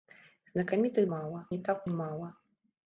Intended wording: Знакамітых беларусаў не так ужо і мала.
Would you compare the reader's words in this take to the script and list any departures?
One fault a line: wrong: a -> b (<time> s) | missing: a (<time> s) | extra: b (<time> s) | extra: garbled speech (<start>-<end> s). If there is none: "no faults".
wrong: беларусаў -> мала (1.1 s)
missing: ужо (1.9 s)